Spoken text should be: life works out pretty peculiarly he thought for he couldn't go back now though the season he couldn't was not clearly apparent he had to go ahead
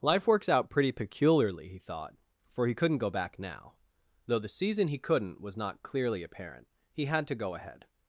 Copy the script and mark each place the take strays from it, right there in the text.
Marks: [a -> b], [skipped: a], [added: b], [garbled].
life works out pretty peculiarly he thought for he couldn't go back now though the season he couldn't was not clearly apparent he had to go ahead